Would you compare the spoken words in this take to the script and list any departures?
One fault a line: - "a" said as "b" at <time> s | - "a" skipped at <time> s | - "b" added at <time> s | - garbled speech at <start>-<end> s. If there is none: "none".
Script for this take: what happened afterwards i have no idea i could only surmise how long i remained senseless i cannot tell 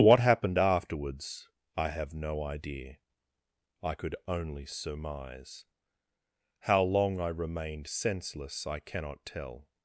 none